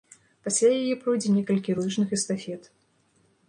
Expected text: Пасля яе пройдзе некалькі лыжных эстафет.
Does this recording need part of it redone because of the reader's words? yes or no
no